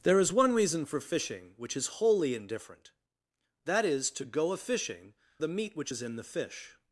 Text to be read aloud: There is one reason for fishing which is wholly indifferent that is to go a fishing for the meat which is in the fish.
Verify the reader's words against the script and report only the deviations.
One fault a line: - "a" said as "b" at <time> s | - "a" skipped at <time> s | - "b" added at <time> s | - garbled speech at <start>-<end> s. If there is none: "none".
- "for" skipped at 5.1 s